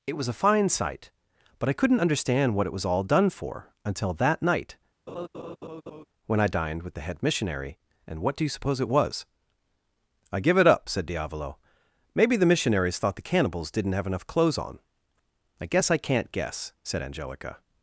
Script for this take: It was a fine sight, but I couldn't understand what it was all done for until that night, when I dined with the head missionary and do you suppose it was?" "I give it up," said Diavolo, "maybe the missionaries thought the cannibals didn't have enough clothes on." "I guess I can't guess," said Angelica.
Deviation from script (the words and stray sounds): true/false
true